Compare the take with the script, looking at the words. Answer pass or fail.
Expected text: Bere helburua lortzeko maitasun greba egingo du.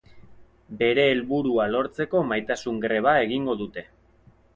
fail